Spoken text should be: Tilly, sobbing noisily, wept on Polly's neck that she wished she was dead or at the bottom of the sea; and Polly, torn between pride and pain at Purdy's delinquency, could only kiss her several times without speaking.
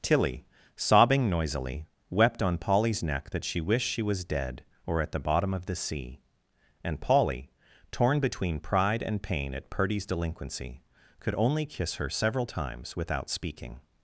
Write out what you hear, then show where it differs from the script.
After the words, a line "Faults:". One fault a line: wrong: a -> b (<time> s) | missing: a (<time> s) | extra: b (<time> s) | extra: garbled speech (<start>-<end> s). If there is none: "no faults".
Tilly, sobbing noisily, wept on Polly's neck that she wished she was dead or at the bottom of the sea; and Polly, torn between pride and pain at Purdy's delinquency, could only kiss her several times without speaking.
Faults:
no faults